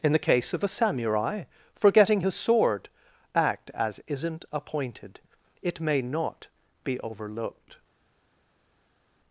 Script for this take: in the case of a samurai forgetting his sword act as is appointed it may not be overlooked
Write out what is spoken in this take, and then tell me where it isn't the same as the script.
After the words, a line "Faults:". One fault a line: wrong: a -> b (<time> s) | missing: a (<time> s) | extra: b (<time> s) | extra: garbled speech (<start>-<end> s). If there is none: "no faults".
in the case of a samurai forgetting his sword act as isn't appointed it may not be overlooked
Faults:
wrong: is -> isn't (4.1 s)